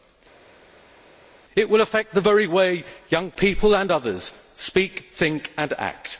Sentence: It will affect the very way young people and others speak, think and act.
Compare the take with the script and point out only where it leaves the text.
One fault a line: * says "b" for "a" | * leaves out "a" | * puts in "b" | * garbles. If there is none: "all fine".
all fine